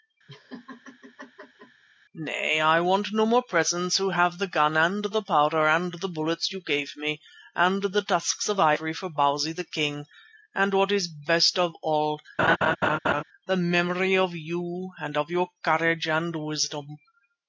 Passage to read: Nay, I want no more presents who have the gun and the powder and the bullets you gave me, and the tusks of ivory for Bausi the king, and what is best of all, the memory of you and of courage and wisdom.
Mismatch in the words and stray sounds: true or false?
true